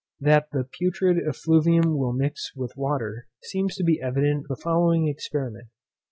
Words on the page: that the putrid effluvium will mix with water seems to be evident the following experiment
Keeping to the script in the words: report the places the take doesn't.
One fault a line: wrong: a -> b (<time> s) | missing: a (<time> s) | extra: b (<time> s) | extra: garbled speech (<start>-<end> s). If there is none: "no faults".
no faults